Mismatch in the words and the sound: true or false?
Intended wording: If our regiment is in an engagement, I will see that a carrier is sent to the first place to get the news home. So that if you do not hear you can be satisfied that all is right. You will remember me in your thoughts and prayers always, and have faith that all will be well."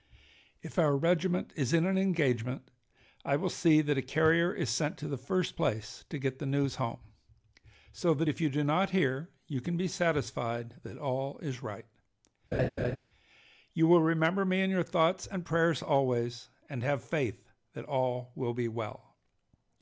true